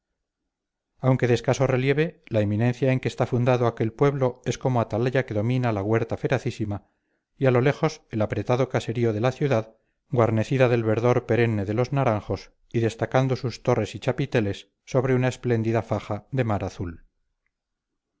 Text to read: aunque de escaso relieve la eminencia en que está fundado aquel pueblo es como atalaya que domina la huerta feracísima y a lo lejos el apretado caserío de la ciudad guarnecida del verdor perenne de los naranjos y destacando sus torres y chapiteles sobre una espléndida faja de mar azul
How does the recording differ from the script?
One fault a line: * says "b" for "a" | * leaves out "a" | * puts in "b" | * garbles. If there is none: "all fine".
all fine